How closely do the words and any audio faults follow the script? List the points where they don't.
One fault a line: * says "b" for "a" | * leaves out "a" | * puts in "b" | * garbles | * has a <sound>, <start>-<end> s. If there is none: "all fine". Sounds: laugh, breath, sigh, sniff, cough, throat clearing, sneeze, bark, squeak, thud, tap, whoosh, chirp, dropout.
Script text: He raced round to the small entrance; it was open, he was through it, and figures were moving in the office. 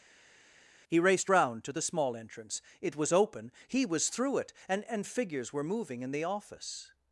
* puts in "and"